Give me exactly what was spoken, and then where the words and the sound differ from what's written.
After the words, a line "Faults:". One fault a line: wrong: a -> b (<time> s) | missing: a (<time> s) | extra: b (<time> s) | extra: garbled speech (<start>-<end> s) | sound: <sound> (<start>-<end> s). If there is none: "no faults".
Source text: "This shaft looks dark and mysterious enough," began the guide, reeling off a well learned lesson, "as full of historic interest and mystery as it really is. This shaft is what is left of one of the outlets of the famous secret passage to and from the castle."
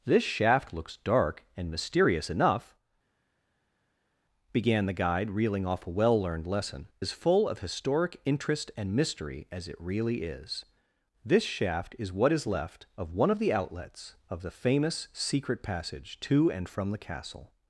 "This shaft looks dark and mysterious enough," began the guide, reeling off a well learned lesson, "as full of historic interest and mystery as it really is. This shaft is what is left of one of the outlets of the famous secret passage to and from the castle."
Faults:
no faults